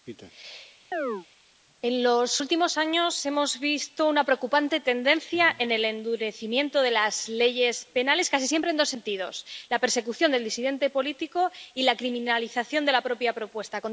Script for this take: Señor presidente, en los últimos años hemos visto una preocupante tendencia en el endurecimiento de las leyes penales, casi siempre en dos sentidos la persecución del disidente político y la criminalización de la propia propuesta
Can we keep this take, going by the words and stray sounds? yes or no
no